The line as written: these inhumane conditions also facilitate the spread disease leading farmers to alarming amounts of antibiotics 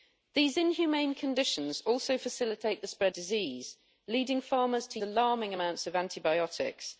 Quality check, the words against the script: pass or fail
pass